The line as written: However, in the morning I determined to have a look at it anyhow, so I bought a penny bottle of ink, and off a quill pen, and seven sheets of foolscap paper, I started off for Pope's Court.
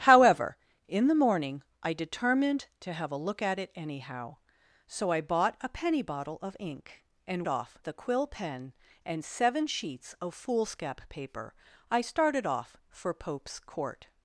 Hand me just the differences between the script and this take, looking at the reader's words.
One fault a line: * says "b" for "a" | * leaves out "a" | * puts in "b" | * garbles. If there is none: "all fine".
all fine